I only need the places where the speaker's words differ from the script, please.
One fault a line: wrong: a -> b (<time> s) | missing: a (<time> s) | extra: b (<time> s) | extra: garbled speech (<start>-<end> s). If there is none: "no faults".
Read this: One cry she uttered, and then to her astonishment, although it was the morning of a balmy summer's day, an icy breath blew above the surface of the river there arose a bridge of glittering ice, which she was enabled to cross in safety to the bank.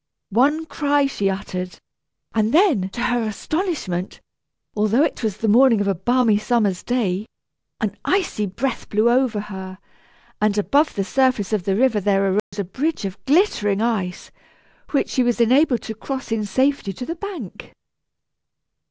extra: over her and (9.1 s)